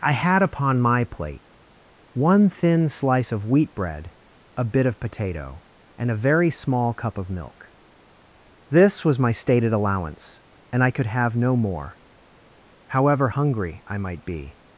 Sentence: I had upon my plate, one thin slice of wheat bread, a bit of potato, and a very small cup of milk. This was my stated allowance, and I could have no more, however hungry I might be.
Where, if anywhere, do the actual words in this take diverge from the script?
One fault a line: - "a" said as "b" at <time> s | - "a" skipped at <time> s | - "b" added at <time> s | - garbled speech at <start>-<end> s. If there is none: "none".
none